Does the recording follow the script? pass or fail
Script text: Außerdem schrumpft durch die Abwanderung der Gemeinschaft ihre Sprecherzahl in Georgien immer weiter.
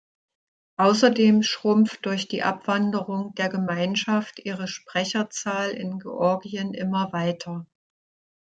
pass